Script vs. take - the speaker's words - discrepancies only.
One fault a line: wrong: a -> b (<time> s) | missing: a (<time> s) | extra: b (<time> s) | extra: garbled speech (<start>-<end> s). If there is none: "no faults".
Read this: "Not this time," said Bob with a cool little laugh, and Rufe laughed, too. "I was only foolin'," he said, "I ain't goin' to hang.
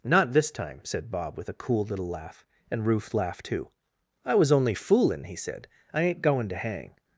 no faults